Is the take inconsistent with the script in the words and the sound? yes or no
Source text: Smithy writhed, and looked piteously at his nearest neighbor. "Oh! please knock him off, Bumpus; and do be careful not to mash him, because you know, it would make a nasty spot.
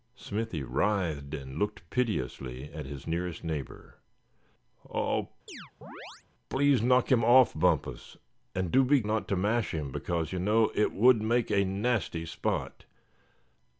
yes